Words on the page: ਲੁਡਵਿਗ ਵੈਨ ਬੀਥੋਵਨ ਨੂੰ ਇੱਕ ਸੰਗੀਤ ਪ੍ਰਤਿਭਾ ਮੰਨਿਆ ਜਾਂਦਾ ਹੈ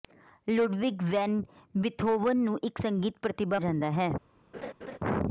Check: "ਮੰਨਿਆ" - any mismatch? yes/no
yes